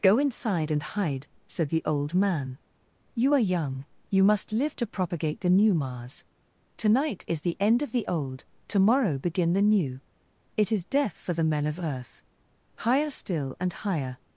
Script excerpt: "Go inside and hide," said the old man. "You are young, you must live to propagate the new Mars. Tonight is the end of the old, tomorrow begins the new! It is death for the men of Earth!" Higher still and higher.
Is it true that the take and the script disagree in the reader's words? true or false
true